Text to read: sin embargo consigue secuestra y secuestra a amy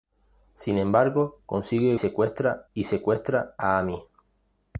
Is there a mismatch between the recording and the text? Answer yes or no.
no